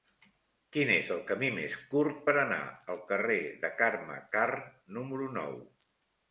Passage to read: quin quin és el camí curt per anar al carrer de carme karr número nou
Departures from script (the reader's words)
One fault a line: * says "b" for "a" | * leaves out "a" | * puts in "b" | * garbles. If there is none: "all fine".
* leaves out "quin"
* puts in "més"